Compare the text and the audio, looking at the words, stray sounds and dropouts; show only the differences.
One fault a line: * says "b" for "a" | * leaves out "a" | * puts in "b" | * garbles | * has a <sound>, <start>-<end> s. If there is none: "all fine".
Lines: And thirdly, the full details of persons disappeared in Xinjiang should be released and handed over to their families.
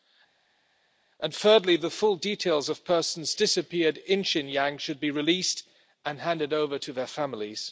all fine